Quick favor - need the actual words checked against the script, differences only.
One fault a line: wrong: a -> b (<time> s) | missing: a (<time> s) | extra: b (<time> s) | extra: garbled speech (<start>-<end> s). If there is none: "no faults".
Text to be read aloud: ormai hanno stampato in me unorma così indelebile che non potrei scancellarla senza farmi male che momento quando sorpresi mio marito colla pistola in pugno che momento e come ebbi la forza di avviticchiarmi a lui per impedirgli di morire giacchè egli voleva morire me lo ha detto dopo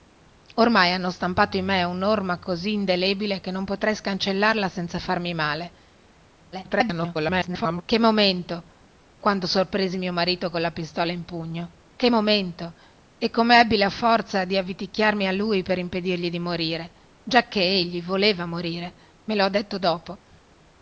extra: garbled speech (6.5-7.8 s)